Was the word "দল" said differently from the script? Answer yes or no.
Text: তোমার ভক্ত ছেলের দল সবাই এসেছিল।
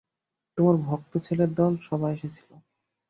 no